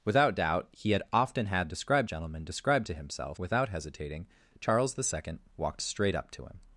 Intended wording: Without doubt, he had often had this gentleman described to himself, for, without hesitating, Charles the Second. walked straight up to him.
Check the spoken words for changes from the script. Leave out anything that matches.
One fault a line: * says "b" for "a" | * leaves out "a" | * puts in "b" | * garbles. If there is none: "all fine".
* says "described" for "this"
* leaves out "for"